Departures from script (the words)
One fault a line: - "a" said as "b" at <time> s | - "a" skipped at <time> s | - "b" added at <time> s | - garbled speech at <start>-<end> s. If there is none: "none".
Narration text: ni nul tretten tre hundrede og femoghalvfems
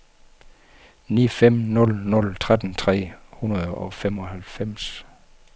- "fem nul" added at 1.4 s